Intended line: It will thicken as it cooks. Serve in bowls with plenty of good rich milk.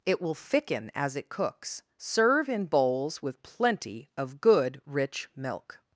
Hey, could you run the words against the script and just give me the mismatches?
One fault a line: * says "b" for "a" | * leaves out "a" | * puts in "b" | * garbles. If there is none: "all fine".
all fine